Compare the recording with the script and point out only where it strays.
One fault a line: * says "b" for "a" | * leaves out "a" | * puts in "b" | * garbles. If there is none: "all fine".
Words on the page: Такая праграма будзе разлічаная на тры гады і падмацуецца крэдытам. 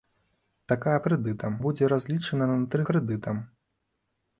* says "крэдытам" for "праграма"
* leaves out "гады і падмацуецца"